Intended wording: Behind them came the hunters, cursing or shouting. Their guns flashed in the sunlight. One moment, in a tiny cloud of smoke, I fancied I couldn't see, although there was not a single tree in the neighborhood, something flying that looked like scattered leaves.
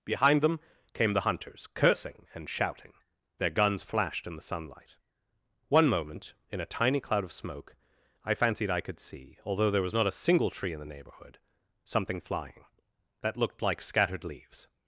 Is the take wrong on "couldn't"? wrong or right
wrong